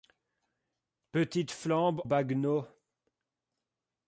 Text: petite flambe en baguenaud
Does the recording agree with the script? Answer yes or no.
no